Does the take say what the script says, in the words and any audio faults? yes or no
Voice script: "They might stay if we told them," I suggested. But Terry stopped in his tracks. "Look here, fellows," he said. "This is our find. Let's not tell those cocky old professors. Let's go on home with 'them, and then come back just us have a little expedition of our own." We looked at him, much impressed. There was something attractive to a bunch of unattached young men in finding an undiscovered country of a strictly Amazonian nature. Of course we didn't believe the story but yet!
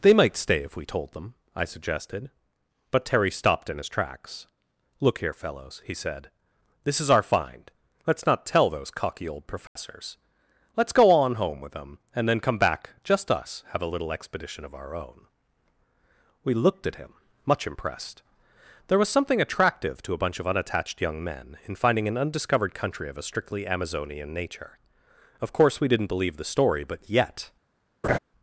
no